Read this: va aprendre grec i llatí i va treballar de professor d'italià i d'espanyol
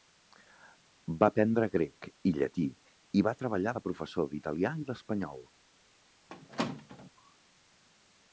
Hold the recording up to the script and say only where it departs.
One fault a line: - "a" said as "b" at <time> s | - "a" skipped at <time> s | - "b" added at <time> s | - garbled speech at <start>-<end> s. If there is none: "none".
none